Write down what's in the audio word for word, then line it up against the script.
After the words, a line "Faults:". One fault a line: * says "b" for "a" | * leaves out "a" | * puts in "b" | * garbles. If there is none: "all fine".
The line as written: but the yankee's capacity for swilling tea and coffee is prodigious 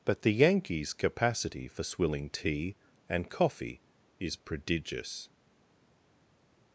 but the yankee's capacity for swilling tea and coffee is prodigious
Faults:
all fine